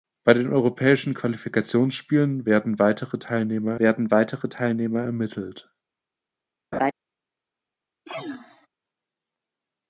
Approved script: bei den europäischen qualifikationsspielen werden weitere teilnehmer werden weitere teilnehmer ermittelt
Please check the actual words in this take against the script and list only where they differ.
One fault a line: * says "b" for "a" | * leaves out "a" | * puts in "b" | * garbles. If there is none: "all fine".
all fine